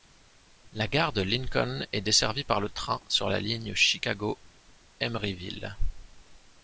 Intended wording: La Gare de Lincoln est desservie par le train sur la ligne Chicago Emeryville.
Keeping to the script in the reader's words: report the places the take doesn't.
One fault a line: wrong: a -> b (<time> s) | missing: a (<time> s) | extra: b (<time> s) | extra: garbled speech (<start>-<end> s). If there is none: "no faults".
no faults